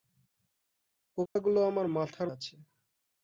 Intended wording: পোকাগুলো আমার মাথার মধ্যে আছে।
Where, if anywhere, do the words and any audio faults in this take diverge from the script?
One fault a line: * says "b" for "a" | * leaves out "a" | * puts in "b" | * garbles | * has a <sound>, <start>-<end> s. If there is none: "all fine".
* has a dropout, 1.3-1.4 s
* leaves out "মধ্যে"